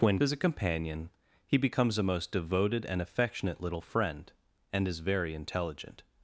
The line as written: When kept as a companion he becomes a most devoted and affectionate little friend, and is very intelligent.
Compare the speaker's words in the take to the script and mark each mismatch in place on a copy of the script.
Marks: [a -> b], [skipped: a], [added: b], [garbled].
When [skipped: kept] as a companion he becomes a most devoted and affectionate little friend, and is very intelligent.